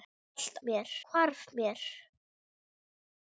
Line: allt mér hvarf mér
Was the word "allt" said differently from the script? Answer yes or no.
no